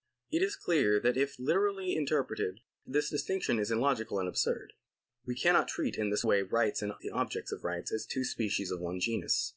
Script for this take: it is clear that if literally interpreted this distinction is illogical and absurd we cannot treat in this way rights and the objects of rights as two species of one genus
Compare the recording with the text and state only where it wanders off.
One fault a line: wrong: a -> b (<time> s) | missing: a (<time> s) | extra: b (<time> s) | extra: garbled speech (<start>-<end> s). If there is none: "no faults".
no faults